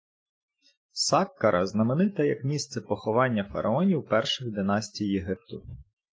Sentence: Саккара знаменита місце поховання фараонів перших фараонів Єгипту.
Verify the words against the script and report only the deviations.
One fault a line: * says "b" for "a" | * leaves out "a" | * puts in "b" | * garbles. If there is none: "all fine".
* puts in "як"
* says "династій" for "фараонів"